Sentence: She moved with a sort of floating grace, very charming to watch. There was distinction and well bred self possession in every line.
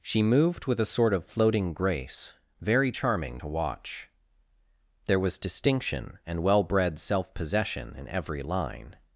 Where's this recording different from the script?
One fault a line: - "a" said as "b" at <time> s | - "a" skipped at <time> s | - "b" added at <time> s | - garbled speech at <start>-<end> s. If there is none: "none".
none